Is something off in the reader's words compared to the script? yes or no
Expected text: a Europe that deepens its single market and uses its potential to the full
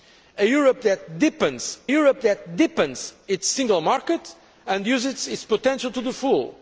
yes